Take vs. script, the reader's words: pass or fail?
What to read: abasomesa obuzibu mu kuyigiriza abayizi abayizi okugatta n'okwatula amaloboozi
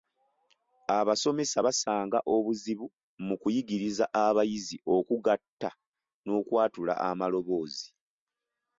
fail